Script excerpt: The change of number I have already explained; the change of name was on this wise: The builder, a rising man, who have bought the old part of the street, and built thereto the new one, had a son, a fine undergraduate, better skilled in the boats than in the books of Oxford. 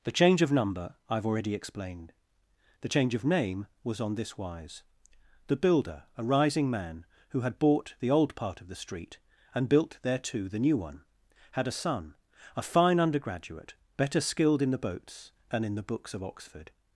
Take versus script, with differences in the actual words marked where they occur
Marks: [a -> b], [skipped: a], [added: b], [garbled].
The change of number I have already explained; the change of name was on this wise: The builder, a rising man, who [have -> had] bought the old part of the street, and built thereto the new one, had a son, a fine undergraduate, better skilled in the boats than in the books of Oxford.